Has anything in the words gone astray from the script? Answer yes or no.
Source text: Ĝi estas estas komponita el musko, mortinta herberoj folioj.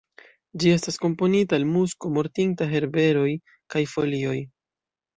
yes